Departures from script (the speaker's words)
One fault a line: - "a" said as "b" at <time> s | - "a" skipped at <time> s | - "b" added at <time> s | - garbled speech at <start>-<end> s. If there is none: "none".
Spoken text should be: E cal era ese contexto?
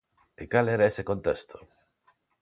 none